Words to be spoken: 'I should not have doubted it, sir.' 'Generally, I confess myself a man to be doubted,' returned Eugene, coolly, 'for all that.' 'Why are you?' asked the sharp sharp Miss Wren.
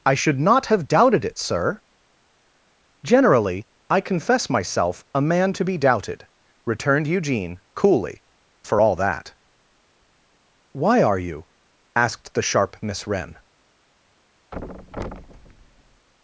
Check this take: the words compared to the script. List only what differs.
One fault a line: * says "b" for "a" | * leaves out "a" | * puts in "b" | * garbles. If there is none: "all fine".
* leaves out "sharp"